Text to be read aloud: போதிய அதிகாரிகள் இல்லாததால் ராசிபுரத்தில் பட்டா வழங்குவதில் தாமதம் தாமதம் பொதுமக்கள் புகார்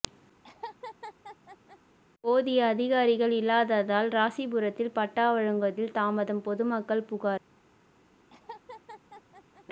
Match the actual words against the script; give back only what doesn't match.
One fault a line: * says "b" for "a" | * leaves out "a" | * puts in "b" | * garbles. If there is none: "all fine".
* leaves out "தாமதம்"